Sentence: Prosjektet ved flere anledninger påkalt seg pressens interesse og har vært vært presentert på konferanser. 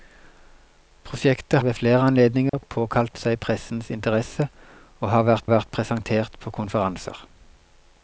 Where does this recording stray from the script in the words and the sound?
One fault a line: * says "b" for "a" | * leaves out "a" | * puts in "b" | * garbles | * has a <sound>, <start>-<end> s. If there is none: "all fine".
* has a dropout, 2.5-2.5 s